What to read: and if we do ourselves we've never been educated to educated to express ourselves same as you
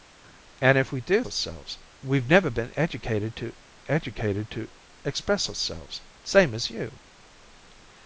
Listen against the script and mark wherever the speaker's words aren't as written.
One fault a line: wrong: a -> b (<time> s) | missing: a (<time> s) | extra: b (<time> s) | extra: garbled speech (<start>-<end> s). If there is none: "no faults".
no faults